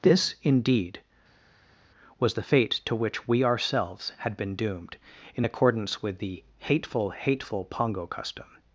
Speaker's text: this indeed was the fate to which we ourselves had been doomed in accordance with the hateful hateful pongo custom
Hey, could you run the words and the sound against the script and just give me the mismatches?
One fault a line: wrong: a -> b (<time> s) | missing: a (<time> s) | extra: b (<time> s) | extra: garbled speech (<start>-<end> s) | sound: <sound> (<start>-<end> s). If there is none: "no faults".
no faults